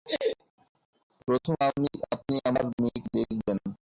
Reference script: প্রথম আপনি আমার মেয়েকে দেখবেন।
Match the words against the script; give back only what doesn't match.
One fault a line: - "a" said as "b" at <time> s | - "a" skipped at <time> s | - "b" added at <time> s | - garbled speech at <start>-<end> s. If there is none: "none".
none